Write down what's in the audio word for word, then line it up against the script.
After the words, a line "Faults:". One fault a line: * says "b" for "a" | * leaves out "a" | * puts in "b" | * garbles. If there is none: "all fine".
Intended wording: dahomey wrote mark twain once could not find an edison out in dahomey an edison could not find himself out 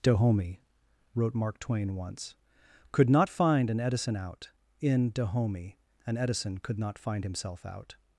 dahomey wrote mark twain once could not find an edison out in dahomey an edison could not find himself out
Faults:
all fine